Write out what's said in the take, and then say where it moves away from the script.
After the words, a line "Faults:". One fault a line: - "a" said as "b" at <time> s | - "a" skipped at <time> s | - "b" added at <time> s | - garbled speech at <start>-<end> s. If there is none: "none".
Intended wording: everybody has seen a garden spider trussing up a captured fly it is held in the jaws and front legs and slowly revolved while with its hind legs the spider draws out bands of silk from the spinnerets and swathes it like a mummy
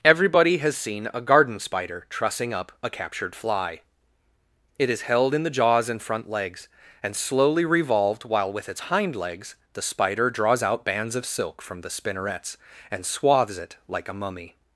everybody has seen a garden spider trussing up a captured fly it is held in the jaws and front legs and slowly revolved while with its hind legs the spider draws out bands of silk from the spinnerets and swathes it like a mummy
Faults:
none